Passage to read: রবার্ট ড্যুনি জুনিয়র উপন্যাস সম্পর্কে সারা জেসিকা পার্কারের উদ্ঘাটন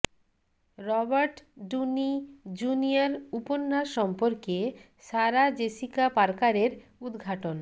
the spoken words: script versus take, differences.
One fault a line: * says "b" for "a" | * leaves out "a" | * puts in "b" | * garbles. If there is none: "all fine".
all fine